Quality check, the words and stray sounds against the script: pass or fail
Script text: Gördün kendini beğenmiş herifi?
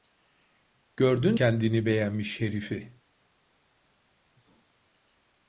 pass